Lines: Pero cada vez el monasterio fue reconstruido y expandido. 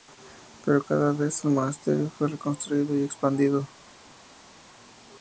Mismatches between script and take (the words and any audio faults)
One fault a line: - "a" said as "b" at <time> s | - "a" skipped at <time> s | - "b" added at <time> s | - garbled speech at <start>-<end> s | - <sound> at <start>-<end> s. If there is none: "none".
none